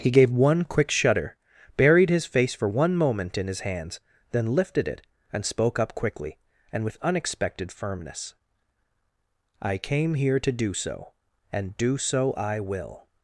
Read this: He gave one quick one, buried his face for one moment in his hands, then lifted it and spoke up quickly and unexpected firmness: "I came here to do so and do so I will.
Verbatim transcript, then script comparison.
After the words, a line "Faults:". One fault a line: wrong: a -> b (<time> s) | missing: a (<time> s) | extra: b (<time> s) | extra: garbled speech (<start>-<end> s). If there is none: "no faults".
He gave one quick shudder, buried his face for one moment in his hands, then lifted it and spoke up quickly and with unexpected firmness: "I came here to do so and do so I will.
Faults:
wrong: one -> shudder (0.9 s)
extra: with (6.8 s)